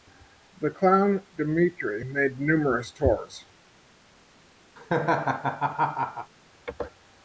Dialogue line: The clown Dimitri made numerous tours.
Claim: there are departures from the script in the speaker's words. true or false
false